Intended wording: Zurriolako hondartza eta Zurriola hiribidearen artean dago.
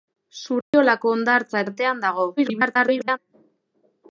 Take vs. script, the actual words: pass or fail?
fail